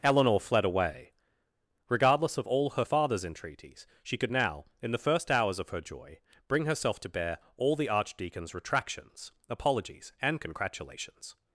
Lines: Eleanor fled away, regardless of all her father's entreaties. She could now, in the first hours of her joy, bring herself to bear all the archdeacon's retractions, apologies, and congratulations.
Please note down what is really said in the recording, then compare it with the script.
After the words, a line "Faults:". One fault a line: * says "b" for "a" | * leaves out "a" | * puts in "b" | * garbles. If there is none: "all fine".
Eleanor fled away, regardless of all her father's entreaties. She could now, in the first hours of her joy, bring herself to bear all the archdeacon's retractions, apologies, and congratulations.
Faults:
all fine